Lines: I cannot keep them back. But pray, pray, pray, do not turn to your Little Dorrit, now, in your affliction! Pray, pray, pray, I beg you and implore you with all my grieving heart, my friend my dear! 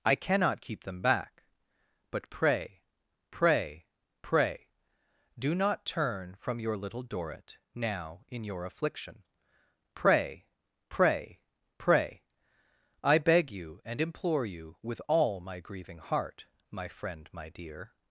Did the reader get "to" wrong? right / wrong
wrong